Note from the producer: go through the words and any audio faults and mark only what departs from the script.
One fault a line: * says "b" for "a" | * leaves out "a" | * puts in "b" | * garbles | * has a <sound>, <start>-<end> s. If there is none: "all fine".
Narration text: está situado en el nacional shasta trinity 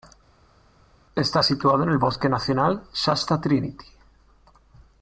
* puts in "bosque"